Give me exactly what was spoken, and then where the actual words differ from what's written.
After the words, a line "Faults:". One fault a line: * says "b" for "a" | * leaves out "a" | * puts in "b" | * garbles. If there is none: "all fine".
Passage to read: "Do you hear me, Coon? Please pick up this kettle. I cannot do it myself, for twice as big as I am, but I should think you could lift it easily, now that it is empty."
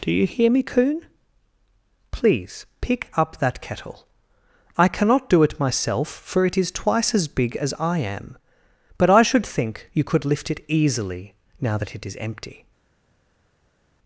"Do you hear me, Coon? Please pick up that kettle. I cannot do it myself, for it is twice as big as I am, but I should think you could lift it easily, now that it is empty."
Faults:
* says "that" for "this"
* puts in "it is"